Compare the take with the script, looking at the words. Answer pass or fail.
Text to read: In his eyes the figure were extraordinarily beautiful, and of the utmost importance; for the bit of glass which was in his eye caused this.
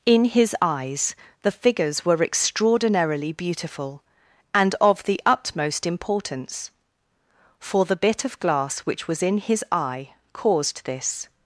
fail